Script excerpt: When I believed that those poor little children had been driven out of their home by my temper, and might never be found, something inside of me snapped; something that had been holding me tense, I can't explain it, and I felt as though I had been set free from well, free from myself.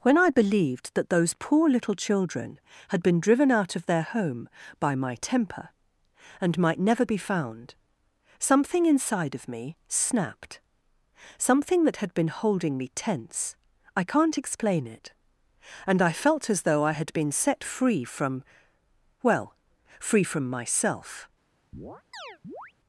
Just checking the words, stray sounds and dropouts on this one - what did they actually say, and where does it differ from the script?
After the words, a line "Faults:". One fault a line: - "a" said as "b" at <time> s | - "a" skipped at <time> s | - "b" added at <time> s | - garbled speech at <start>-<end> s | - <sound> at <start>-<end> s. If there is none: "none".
When I believed that those poor little children had been driven out of their home by my temper, and might never be found, something inside of me snapped; something that had been holding me tense, I can't explain it, and I felt as though I had been set free from well, free from myself.
Faults:
- chirp at 21.7-22.7 s